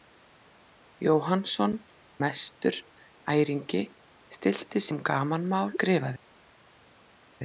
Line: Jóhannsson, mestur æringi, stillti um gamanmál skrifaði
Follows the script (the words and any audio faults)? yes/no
yes